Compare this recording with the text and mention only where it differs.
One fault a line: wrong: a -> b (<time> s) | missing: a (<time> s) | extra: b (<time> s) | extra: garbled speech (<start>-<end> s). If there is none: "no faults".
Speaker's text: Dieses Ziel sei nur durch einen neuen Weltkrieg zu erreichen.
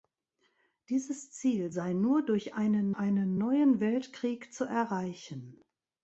extra: einen (3.0 s)